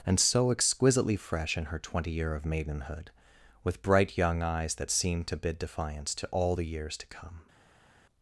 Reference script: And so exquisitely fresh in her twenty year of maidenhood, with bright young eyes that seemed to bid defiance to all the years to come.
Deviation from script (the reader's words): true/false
false